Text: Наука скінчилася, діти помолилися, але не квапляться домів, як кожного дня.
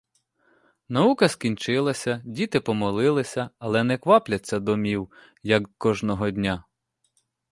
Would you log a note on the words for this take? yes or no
no